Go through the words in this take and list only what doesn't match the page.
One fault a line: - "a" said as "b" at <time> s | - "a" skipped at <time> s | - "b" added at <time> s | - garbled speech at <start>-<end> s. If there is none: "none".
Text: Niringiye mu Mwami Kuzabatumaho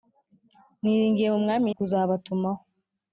none